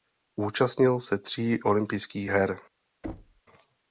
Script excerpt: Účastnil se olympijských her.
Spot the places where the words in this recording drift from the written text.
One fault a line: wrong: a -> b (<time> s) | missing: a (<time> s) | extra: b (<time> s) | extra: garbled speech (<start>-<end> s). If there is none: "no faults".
extra: tří (1.2 s)